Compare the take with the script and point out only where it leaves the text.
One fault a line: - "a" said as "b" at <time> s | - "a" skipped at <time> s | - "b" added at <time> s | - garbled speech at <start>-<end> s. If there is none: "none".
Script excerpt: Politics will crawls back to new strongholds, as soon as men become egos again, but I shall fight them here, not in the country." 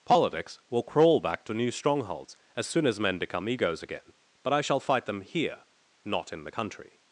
- "crawls" said as "crawl" at 0.8 s